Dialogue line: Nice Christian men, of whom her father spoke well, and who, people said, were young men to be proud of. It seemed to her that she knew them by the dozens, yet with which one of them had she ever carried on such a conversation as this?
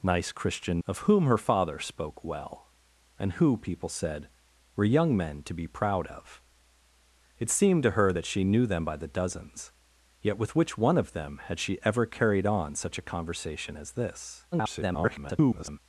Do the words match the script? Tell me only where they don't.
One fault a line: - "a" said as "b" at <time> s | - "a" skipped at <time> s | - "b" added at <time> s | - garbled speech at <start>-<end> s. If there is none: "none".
- "men" skipped at 0.8 s
- garbled speech at 14.5-15.8 s